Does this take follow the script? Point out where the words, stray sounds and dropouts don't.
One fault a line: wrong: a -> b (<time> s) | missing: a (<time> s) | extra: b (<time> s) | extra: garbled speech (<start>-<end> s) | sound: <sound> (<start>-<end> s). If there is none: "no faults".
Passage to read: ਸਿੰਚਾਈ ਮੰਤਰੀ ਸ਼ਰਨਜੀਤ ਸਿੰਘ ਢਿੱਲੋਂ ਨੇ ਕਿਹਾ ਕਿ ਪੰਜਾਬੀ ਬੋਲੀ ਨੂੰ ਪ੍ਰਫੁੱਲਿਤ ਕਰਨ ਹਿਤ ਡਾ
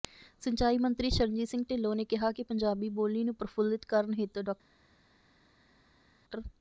no faults